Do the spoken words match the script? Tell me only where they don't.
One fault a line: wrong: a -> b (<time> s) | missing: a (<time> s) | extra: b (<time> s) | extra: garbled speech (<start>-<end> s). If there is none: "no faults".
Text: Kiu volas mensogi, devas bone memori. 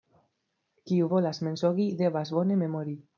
no faults